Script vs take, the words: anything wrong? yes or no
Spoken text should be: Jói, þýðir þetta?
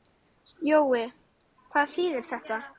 yes